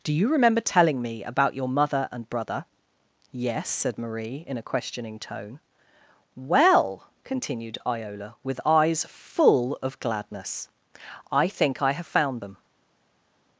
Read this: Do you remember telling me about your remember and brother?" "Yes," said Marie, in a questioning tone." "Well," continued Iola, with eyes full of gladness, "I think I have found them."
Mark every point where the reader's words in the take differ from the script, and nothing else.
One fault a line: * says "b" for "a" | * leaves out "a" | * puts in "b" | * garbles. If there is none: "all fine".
* says "mother" for "remember"